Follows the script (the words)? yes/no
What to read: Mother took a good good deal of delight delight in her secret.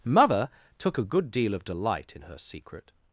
no